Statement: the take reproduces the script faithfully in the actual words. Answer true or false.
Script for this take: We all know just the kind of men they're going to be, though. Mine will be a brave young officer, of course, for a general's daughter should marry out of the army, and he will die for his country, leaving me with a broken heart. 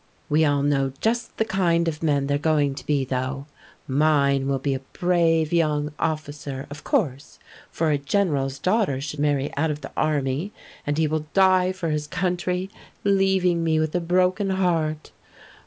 true